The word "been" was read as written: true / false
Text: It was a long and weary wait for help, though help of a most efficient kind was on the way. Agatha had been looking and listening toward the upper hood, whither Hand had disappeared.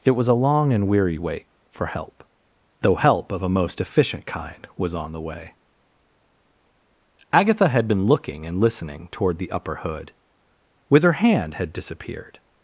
true